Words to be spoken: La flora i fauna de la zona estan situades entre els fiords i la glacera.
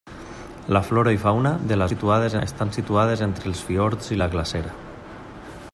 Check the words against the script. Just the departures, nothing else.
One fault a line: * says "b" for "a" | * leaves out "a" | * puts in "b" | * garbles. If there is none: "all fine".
* says "situades" for "zona"